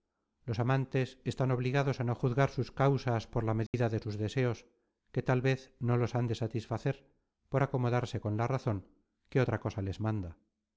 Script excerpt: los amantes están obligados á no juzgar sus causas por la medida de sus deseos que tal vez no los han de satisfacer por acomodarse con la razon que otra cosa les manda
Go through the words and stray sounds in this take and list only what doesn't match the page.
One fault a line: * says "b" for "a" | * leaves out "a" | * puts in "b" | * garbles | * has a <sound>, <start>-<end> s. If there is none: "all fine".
* has a dropout, 3.7-3.7 s